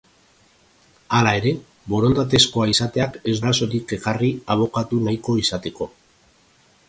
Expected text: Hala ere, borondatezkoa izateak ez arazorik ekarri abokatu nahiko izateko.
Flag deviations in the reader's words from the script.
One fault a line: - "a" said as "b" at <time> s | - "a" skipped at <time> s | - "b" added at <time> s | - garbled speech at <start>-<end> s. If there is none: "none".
none